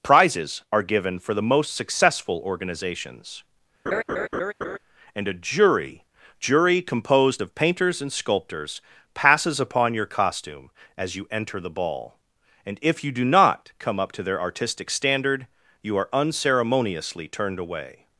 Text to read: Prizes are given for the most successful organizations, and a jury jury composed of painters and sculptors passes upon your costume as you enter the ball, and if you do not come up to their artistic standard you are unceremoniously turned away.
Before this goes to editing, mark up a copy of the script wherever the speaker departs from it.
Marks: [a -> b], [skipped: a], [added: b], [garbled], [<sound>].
Prizes are given for the most successful organizations, [laugh] and a jury jury composed of painters and sculptors passes upon your costume as you enter the ball, and if you do not come up to their artistic standard you are unceremoniously turned away.